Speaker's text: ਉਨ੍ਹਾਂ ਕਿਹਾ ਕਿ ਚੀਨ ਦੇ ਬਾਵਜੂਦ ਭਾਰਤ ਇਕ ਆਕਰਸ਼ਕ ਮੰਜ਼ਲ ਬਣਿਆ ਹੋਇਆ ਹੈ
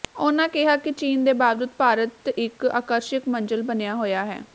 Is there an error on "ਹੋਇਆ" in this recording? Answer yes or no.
no